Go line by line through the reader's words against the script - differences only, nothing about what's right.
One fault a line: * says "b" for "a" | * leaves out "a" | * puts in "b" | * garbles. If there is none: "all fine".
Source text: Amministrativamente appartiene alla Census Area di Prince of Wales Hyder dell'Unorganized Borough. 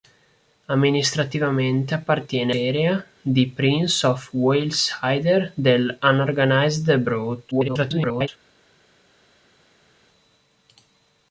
* leaves out "alla Census"
* garbles